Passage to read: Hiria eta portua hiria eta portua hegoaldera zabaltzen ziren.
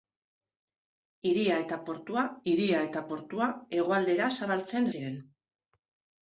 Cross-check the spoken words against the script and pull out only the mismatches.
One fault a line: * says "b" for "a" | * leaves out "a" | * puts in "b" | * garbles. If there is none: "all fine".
all fine